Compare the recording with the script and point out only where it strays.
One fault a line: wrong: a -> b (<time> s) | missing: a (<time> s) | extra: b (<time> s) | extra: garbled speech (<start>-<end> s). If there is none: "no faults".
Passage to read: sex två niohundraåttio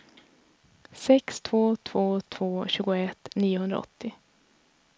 extra: två två tjugoett (1.7 s)